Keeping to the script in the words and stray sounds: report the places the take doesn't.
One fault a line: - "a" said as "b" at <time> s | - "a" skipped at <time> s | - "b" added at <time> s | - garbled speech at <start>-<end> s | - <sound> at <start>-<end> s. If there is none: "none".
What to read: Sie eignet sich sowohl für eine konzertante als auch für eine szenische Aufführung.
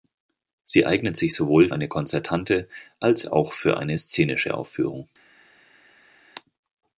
- "für" skipped at 1.7 s